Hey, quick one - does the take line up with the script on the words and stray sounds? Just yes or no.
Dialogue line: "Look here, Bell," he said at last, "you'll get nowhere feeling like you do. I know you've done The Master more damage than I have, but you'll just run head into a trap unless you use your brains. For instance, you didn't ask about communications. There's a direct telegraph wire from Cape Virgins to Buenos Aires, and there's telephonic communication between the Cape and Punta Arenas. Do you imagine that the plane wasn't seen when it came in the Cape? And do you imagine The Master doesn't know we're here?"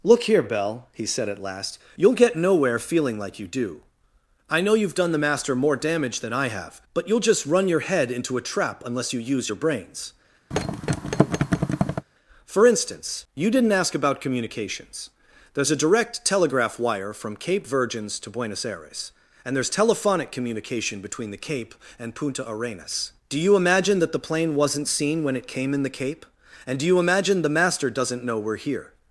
no